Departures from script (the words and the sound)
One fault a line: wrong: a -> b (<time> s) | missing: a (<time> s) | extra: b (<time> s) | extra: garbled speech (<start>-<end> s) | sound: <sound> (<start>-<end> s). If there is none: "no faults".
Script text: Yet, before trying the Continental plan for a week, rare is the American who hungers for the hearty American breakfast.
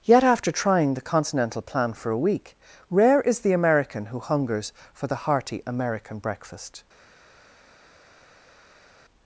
wrong: before -> after (0.2 s)